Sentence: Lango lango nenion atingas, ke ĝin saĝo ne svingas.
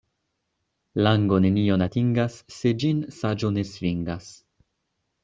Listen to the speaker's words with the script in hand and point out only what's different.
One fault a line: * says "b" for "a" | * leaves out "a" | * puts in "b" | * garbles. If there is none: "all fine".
* leaves out "lango"
* says "se" for "ke"